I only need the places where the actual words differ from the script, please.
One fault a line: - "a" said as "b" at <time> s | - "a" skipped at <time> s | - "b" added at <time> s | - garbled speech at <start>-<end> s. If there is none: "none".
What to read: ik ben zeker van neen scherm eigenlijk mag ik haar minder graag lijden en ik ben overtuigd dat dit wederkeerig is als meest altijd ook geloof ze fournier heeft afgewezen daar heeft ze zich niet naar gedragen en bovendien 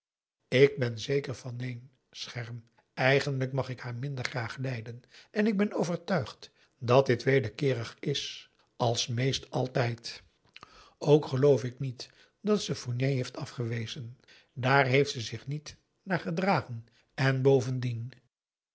- "ik niet dat" added at 11.6 s